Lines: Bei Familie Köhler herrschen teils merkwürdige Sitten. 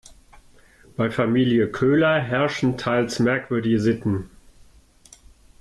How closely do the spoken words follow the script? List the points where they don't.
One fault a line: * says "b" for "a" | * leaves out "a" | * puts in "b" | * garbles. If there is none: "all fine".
all fine